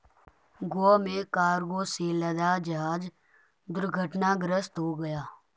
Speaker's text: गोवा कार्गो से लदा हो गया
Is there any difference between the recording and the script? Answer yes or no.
yes